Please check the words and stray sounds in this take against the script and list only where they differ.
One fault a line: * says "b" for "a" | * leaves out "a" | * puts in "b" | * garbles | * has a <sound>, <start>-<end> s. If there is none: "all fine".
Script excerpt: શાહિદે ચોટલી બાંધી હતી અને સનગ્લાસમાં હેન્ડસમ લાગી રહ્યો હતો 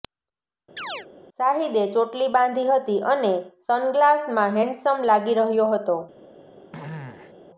* has a chirp, 0.8-1.1 s
* has a throat clearing, 6.7-7.3 s